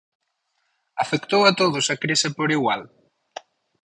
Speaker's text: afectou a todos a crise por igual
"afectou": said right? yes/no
yes